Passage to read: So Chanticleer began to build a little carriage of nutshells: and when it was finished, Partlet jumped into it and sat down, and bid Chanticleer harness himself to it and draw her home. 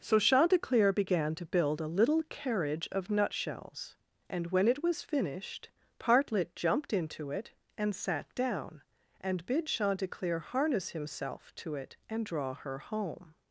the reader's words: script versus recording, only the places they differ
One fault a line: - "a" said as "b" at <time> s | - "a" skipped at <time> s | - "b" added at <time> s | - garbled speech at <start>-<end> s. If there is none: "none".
none